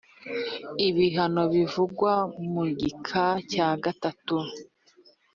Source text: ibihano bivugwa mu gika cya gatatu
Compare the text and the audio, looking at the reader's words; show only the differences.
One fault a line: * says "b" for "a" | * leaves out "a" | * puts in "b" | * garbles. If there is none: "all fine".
all fine